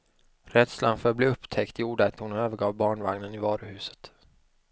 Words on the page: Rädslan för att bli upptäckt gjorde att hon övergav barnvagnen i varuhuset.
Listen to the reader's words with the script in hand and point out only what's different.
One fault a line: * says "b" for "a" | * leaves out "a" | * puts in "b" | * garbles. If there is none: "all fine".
all fine